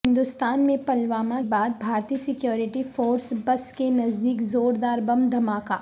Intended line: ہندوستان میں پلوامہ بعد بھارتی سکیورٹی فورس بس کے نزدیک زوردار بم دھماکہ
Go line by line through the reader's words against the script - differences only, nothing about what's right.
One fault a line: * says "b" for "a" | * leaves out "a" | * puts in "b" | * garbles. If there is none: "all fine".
all fine